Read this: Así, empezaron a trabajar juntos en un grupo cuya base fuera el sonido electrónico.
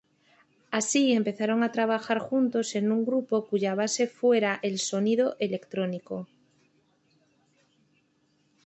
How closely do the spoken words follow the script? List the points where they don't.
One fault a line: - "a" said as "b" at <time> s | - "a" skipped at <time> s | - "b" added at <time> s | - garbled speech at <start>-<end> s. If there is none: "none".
none